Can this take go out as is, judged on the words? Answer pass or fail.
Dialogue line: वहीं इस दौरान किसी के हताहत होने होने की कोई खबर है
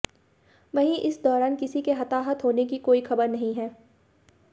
fail